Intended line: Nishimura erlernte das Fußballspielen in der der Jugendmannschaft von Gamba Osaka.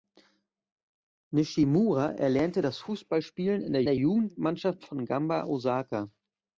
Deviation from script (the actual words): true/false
false